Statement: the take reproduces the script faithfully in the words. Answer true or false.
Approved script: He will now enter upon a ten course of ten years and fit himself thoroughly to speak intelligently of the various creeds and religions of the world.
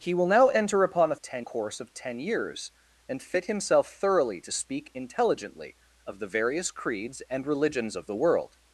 true